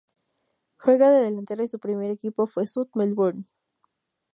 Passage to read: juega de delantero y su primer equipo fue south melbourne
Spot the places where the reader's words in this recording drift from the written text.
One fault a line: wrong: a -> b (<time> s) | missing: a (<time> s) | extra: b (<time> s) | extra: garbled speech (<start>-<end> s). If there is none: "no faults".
no faults